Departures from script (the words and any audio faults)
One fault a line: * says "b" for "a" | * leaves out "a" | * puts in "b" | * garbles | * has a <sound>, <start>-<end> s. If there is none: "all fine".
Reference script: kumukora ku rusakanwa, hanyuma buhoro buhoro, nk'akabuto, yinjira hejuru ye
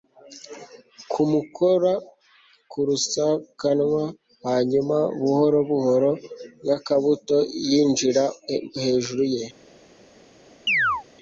* has a chirp, 10.7-11.0 s